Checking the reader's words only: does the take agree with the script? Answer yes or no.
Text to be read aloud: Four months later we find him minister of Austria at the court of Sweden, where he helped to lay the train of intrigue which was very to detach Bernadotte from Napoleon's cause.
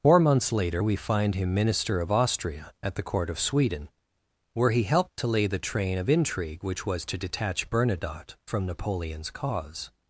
no